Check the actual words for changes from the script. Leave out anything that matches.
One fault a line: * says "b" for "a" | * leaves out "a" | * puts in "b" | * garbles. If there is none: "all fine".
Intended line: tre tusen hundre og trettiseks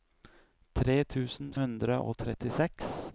all fine